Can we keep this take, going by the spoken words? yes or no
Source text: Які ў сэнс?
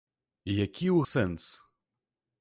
yes